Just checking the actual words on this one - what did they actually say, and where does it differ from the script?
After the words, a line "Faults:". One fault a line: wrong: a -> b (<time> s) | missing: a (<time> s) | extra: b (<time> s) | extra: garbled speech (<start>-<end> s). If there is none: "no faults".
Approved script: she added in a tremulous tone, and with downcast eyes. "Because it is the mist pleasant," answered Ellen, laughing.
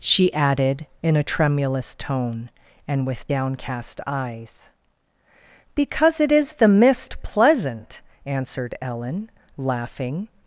she added in a tremulous tone, and with downcast eyes. "Because it is the mist pleasant," answered Ellen, laughing.
Faults:
no faults